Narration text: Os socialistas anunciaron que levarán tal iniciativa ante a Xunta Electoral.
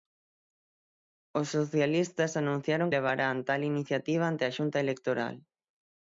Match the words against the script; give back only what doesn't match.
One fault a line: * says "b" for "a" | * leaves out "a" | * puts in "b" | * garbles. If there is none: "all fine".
* leaves out "que"